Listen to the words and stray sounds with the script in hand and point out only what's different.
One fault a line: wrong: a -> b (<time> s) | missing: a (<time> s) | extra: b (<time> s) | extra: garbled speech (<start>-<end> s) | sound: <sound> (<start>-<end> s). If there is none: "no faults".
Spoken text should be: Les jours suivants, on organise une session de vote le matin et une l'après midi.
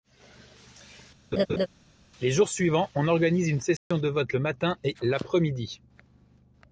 sound: laugh (1.3-1.7 s)
sound: dropout (3.8-3.9 s)
missing: une (5.0 s)